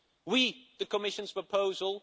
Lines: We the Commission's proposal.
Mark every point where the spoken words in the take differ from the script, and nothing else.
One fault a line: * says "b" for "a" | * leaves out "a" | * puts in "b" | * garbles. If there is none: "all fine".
all fine